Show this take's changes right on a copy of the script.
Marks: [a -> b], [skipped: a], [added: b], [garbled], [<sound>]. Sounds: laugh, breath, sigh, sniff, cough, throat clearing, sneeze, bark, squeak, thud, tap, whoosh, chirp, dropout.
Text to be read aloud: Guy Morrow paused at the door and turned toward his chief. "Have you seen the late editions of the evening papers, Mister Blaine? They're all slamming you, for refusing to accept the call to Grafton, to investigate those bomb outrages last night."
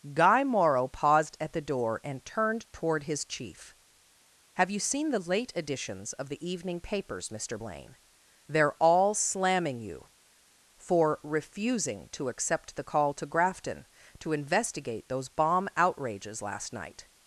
Guy Morrow paused at the door and turned toward his chief. "Have you seen the late editions of the evening papers, Mister Blaine? They're all slamming you, for refusing to accept the call to Grafton, to investigate those bomb outrages last night."